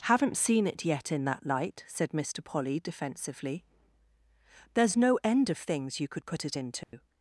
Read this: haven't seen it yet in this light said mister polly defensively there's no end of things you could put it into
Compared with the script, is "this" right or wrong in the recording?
wrong